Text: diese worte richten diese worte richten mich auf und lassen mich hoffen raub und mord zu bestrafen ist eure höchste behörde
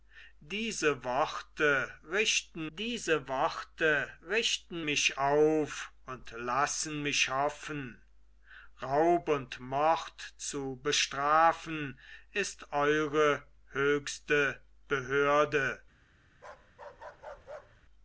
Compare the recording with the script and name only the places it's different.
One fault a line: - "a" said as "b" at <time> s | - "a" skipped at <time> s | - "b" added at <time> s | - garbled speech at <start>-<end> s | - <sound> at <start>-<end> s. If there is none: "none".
- bark at 16.3-17.8 s